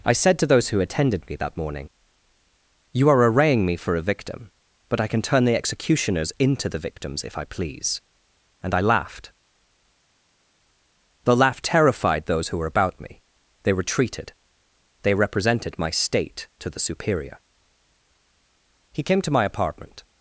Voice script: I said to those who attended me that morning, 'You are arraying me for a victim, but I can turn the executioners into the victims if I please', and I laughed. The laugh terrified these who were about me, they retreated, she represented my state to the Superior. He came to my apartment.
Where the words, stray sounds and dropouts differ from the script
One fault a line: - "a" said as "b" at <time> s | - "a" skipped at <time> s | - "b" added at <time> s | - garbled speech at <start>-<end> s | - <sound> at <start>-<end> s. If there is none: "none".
- "these" said as "those" at 12.2 s
- "she" said as "they" at 15.0 s